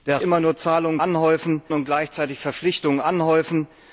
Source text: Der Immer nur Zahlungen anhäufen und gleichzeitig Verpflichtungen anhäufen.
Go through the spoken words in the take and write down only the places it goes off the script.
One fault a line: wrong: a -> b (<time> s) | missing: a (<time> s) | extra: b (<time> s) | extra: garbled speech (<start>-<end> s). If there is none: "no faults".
no faults